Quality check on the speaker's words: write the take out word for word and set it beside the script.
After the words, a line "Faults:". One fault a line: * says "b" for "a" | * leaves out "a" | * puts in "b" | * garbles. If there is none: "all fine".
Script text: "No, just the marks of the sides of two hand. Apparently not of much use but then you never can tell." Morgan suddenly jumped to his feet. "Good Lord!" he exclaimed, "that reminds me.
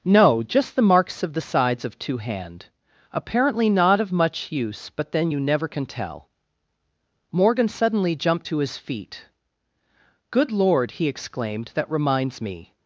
"No, just the marks of the sides of two hand. Apparently not of much use but then you never can tell." Morgan suddenly jumped to his feet. "Good Lord!" he exclaimed, "that reminds me.
Faults:
all fine